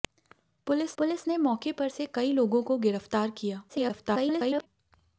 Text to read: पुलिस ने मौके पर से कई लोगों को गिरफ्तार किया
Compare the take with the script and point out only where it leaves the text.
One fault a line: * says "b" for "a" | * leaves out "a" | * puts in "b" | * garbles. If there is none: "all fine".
* puts in "पुलिस"
* garbles